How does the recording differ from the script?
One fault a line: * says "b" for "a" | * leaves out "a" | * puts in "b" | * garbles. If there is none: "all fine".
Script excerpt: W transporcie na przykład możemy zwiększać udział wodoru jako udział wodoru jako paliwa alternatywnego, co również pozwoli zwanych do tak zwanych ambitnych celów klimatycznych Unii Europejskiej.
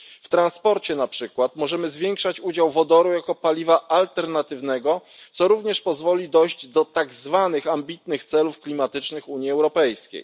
* leaves out "udział wodoru jako"
* says "dojść" for "zwanych"